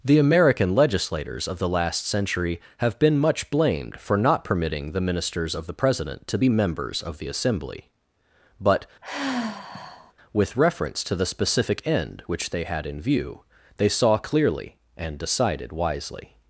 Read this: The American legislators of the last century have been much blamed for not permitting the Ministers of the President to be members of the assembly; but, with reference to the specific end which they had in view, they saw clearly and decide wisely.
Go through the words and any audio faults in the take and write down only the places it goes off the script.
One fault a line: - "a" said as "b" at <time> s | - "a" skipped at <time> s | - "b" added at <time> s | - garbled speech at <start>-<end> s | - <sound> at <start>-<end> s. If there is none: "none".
- sigh at 9.0-10.1 s
- "decide" said as "decided" at 15.2 s